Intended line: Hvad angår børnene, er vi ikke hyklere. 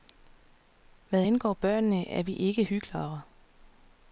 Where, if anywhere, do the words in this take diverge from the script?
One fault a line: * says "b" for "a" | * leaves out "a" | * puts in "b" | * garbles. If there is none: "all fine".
all fine